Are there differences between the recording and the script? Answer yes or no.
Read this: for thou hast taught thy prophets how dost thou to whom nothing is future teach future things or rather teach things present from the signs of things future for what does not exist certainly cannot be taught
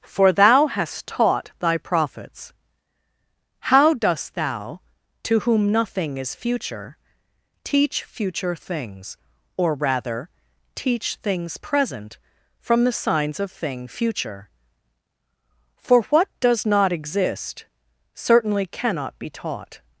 yes